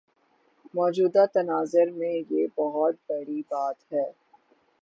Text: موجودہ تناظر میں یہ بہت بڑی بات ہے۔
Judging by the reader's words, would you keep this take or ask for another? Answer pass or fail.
pass